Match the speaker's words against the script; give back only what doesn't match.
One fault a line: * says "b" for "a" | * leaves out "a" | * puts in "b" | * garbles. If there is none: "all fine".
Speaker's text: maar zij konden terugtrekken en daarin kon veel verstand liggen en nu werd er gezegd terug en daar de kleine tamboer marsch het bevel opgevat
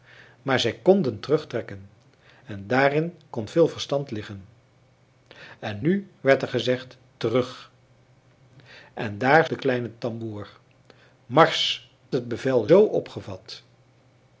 all fine